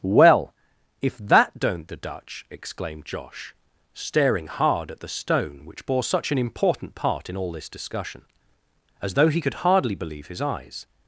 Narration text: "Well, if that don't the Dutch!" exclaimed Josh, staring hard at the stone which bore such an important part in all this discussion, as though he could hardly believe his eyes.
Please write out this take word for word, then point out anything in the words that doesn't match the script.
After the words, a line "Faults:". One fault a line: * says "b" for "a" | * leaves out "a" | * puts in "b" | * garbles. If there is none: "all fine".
"Well, if that don't the Dutch!" exclaimed Josh, staring hard at the stone which bore such an important part in all this discussion, as though he could hardly believe his eyes.
Faults:
all fine